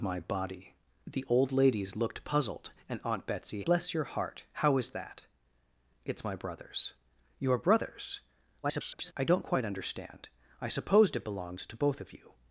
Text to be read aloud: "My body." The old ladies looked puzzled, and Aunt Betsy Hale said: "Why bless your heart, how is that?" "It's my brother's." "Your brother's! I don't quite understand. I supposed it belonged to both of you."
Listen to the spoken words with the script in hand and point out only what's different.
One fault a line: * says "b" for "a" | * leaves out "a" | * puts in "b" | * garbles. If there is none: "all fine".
* leaves out "Hale said Why"
* garbles